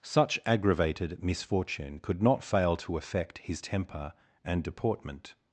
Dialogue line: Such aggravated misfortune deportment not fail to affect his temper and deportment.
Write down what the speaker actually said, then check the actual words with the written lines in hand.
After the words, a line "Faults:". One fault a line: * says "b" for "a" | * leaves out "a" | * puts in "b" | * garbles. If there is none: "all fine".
Such aggravated misfortune could not fail to affect his temper and deportment.
Faults:
* says "could" for "deportment"